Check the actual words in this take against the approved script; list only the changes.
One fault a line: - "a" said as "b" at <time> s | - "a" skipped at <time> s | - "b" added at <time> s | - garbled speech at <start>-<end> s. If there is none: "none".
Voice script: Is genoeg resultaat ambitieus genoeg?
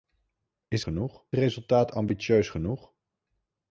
none